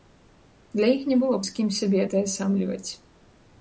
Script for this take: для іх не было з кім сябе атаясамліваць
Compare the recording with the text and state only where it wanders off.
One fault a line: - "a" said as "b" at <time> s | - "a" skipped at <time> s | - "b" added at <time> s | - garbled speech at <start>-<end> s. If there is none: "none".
none